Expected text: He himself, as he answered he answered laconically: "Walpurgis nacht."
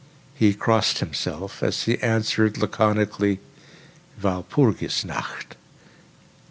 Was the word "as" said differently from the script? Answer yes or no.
no